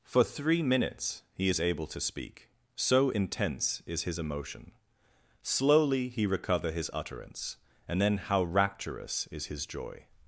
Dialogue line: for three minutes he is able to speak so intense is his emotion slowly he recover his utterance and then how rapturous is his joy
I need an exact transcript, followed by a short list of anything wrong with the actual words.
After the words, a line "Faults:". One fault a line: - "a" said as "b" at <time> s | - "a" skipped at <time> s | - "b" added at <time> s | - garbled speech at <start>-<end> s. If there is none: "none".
for three minutes he is able to speak so intense is his emotion slowly he recover his utterance and then how rapturous is his joy
Faults:
none